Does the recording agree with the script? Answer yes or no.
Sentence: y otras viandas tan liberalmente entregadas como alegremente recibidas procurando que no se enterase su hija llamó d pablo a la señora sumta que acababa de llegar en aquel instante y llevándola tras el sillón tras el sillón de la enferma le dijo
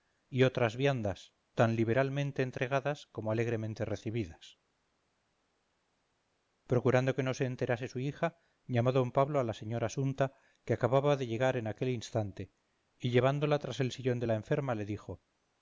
no